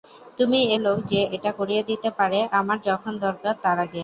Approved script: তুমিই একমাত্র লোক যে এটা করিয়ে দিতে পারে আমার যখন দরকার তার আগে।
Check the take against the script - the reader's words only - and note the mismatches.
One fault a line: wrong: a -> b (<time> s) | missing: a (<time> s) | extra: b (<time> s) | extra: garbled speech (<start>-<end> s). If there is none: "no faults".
missing: একমাত্র (0.7 s)